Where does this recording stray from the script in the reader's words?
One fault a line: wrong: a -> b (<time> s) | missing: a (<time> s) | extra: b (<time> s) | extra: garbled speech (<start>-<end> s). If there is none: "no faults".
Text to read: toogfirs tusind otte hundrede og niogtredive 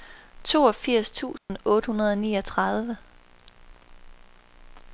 no faults